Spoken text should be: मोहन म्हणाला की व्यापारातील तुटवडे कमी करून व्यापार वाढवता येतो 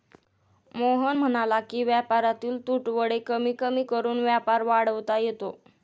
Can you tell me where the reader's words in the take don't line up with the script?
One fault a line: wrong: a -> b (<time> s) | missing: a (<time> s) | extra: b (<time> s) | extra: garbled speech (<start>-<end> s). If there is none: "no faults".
extra: कमी (3.5 s)